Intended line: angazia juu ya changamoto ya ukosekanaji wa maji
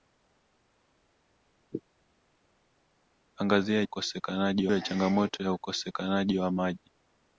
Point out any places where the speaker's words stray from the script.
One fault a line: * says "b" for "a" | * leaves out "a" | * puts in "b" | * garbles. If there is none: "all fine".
* says "ukosekanaji" for "juu"